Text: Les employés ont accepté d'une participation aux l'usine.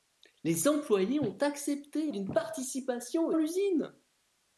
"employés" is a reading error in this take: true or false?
false